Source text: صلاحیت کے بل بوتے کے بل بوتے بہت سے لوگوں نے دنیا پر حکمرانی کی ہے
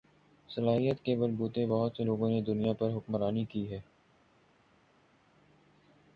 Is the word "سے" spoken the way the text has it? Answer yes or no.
yes